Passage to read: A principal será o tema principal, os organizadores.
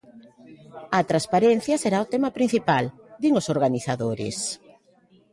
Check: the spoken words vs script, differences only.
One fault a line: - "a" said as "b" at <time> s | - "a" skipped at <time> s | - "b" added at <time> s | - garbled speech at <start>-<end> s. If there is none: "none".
- "principal" said as "transparencia" at 1.1 s
- "din" added at 3.2 s